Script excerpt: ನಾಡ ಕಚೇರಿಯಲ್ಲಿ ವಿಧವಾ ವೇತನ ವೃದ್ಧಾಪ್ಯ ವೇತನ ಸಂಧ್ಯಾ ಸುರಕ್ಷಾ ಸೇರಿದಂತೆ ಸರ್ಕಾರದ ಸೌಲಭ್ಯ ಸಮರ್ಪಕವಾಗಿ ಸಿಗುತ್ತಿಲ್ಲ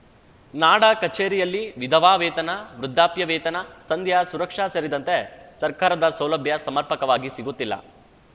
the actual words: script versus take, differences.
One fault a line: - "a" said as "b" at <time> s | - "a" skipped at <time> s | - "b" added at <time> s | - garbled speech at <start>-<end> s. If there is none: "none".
none